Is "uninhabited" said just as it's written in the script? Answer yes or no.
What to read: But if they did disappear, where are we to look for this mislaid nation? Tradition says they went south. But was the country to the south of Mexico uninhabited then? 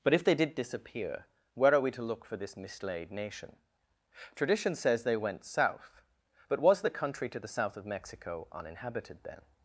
yes